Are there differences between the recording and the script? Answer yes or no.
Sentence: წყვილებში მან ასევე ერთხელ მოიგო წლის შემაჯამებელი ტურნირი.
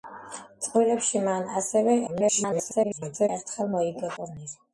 yes